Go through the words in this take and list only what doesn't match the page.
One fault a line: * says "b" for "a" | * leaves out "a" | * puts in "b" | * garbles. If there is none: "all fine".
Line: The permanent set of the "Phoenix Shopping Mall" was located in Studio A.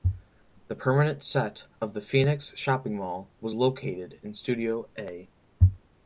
all fine